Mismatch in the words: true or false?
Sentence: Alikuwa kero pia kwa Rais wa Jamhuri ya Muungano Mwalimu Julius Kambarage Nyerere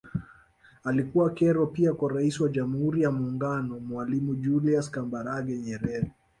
false